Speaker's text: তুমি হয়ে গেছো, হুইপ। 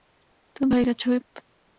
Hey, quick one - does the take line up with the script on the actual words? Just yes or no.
yes